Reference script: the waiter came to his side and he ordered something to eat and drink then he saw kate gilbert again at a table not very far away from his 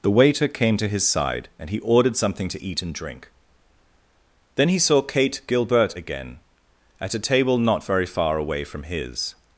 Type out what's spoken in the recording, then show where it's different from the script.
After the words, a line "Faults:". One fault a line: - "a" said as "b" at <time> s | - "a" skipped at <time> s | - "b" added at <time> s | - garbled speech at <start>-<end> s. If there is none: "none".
the waiter came to his side and he ordered something to eat and drink then he saw kate gilbert again at a table not very far away from his
Faults:
none